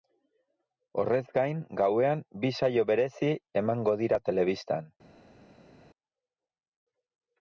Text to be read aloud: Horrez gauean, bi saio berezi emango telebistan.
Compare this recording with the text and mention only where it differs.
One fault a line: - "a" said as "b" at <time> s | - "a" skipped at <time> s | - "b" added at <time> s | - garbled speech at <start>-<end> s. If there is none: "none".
- "gain" added at 1.4 s
- "dira" added at 4.0 s